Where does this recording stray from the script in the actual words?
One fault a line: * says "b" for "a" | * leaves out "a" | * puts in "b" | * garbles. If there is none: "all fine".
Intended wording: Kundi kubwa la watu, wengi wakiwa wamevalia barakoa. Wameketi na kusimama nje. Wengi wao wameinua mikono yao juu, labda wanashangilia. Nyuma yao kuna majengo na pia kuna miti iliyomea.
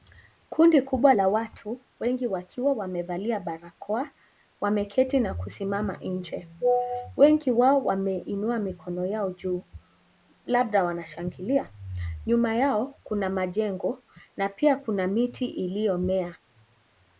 all fine